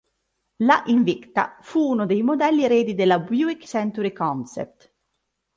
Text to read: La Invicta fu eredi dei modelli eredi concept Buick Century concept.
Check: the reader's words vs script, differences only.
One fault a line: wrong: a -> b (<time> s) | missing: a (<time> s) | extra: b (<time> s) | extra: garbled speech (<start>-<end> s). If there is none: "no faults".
wrong: eredi -> uno (1.9 s)
wrong: concept -> della (2.9 s)